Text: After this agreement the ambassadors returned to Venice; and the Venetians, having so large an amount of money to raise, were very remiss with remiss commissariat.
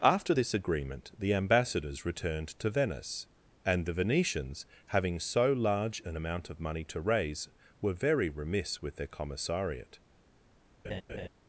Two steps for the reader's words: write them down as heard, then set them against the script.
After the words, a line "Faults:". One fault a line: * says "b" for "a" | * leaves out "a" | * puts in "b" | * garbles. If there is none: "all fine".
After this agreement the ambassadors returned to Venice; and the Venetians, having so large an amount of money to raise, were very remiss with their commissariat.
Faults:
* says "their" for "remiss"